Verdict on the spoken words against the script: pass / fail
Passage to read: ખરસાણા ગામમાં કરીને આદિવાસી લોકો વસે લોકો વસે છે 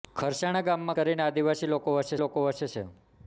pass